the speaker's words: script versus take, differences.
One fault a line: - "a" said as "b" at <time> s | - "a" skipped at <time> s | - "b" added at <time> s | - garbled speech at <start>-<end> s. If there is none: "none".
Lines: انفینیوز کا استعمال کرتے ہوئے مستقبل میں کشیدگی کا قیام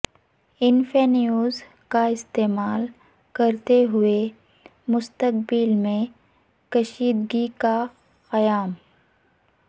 none